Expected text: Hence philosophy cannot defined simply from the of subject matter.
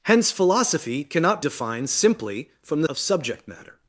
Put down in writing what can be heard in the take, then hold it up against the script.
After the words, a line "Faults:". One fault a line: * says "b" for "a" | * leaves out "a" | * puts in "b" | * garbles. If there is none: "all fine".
Hence philosophy cannot defined simply from the of subject matter.
Faults:
all fine